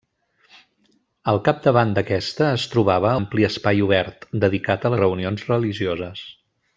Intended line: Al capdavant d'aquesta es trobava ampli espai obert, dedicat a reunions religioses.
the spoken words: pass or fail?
pass